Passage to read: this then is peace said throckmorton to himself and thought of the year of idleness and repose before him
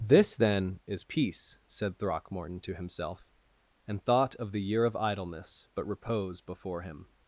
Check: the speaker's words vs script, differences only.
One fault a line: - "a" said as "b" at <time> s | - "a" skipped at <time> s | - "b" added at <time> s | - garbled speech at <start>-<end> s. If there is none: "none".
- "and" said as "but" at 5.7 s